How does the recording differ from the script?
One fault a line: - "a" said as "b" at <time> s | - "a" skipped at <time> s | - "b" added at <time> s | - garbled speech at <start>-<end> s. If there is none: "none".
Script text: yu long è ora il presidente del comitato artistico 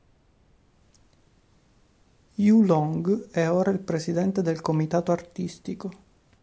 none